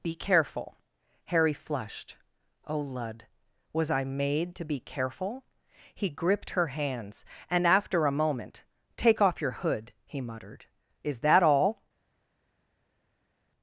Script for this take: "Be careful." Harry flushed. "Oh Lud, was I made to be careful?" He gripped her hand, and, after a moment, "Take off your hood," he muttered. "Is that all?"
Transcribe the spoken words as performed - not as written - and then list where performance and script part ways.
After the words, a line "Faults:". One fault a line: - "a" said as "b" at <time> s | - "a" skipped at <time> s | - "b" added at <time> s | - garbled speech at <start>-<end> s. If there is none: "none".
"Be careful." Harry flushed. "Oh Lud, was I made to be careful?" He gripped her hands, and, after a moment, "Take off your hood," he muttered. "Is that all?"
Faults:
- "hand" said as "hands" at 6.7 s